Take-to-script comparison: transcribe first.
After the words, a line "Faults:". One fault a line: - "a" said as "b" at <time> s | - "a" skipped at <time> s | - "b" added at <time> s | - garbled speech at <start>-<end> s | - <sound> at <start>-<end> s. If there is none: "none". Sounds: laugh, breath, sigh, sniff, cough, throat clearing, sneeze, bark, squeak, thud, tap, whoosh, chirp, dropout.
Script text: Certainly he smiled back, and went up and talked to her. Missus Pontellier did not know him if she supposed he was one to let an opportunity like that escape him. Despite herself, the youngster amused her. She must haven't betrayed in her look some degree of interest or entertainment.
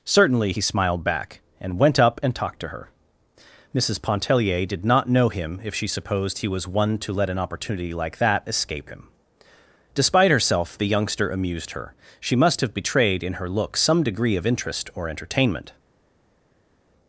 Certainly he smiled back, and went up and talked to her. Missus Pontellier did not know him if she supposed he was one to let an opportunity like that escape him. Despite herself, the youngster amused her. She must have betrayed in her look some degree of interest or entertainment.
Faults:
- "haven't" said as "have" at 12.6 s